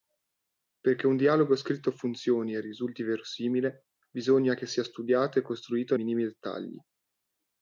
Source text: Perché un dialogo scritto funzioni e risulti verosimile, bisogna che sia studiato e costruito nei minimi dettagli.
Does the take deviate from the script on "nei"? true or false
true